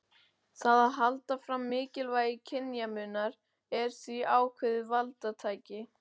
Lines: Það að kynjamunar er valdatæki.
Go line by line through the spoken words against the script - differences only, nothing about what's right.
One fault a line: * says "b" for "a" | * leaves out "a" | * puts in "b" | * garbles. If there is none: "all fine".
* puts in "halda fram mikilvægi"
* puts in "því ákveðið"